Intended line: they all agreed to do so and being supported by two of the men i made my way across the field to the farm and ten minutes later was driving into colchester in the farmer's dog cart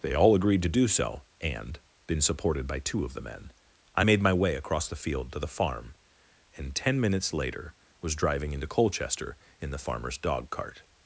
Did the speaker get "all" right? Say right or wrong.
right